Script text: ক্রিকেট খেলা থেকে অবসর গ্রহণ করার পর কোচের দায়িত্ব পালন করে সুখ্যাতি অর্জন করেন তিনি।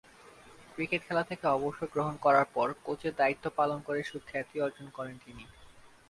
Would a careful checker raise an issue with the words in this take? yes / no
no